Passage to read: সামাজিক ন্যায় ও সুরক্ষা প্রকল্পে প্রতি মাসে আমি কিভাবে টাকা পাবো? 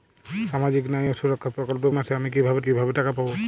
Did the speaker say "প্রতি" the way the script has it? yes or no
no